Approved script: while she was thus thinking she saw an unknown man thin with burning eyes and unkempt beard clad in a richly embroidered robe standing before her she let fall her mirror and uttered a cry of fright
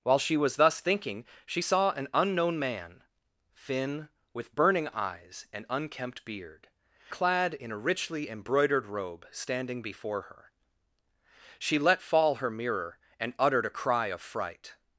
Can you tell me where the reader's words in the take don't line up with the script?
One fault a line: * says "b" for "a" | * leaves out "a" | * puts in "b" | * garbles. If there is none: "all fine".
all fine